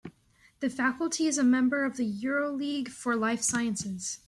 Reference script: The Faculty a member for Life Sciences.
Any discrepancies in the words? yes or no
yes